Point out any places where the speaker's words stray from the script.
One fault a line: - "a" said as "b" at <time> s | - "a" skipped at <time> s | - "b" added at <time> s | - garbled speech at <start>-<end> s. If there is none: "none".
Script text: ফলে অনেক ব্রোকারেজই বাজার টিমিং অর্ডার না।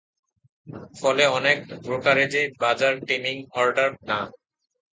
none